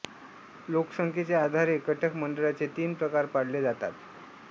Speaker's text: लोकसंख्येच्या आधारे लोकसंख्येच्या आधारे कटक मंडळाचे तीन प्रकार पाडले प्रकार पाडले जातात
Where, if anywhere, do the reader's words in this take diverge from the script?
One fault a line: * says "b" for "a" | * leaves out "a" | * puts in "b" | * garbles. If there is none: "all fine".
* leaves out "लोकसंख्येच्या आधारे"
* leaves out "प्रकार पाडले"